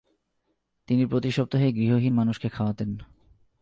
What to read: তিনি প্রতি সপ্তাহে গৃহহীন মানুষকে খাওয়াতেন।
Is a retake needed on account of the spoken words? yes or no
no